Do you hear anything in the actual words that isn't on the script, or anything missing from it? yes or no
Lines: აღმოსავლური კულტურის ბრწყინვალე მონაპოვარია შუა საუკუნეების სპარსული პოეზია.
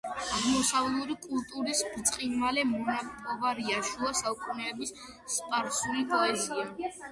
no